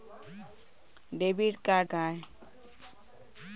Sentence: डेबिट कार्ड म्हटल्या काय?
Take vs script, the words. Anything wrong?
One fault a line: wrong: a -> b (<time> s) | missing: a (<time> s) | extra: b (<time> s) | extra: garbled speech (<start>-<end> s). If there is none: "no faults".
missing: म्हटल्या (1.9 s)